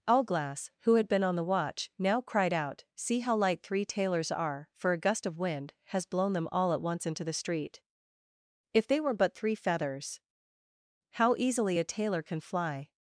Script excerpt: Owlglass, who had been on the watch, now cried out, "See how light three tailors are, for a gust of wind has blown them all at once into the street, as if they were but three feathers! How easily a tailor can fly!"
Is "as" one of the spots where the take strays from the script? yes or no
yes